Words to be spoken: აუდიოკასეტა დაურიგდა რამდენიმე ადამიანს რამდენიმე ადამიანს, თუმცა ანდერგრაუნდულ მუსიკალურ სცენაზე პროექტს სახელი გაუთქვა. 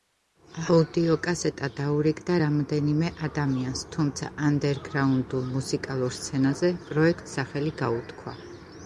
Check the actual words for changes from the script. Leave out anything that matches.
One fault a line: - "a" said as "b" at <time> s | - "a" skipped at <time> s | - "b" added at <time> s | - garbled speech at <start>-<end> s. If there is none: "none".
- "რამდენიმე ადამიანს" skipped at 3.8 s